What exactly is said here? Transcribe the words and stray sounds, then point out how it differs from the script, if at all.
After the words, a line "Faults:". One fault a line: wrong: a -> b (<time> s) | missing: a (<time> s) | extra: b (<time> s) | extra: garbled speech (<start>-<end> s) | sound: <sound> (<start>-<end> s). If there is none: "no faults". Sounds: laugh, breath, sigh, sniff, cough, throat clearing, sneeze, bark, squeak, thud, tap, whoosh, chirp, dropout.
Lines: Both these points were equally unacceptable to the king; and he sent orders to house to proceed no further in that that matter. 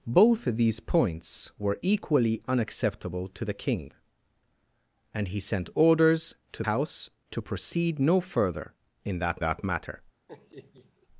Both these points were equally unacceptable to the king; and he sent orders to house to proceed no further in that that matter.
Faults:
sound: laugh (10.3-11.1 s)